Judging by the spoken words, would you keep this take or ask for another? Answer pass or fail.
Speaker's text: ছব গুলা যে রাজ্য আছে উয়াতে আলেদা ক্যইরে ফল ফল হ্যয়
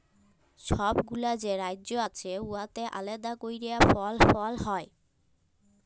pass